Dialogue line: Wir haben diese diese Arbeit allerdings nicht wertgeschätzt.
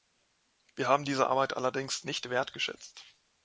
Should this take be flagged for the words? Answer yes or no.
yes